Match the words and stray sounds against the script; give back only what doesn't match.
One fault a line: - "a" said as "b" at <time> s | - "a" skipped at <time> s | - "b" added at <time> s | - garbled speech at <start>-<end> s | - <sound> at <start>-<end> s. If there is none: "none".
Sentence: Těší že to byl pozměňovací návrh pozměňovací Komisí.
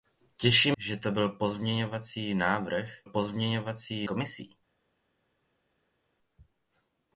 none